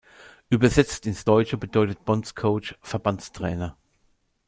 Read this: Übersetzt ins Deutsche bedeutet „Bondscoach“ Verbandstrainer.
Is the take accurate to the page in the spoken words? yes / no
yes